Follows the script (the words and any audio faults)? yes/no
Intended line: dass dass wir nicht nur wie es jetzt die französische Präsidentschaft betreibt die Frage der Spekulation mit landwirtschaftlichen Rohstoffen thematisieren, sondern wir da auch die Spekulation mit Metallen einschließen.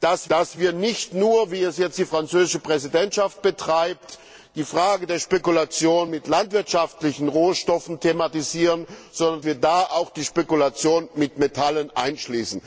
yes